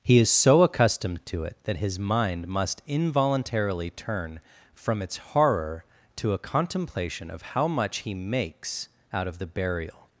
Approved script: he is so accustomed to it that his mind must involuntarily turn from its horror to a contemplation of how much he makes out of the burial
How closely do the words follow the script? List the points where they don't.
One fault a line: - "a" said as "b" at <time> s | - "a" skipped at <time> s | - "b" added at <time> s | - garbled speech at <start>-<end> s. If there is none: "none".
none